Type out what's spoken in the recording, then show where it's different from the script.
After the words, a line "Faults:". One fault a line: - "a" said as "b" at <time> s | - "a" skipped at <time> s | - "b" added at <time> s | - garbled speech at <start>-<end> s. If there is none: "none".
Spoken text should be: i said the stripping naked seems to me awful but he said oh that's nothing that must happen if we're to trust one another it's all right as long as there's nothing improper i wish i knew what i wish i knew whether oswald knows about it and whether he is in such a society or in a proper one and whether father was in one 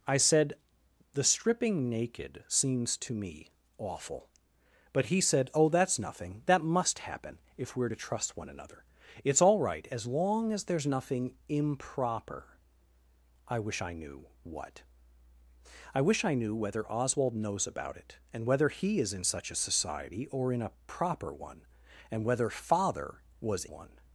i said the stripping naked seems to me awful but he said oh that's nothing that must happen if we're to trust one another it's all right as long as there's nothing improper i wish i knew what i wish i knew whether oswald knows about it and whether he is in such a society or in a proper one and whether father was one
Faults:
- "in" skipped at 23.7 s